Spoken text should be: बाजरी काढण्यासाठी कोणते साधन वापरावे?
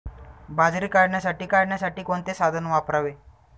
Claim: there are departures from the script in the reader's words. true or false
true